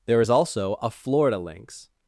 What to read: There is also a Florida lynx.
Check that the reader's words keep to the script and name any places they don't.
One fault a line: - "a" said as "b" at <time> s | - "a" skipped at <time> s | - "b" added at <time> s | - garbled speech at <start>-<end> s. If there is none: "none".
none